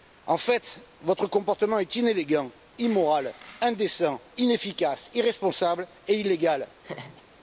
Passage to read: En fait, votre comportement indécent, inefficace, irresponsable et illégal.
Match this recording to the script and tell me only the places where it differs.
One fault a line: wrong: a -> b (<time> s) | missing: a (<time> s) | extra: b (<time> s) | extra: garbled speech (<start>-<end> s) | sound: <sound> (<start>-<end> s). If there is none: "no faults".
extra: est inélégant immoral (1.8 s)
sound: laugh (6.8-7.2 s)